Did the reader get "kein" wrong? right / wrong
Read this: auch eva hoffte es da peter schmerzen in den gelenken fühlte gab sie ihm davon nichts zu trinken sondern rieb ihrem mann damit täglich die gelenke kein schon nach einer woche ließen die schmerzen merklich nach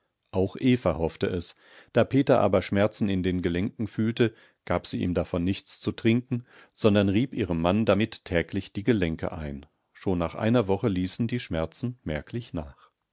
wrong